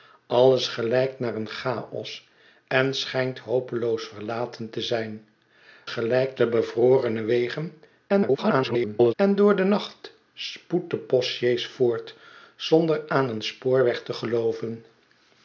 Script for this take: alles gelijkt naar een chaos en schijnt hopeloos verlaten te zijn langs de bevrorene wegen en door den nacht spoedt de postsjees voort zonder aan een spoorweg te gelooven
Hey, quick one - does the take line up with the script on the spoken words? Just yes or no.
no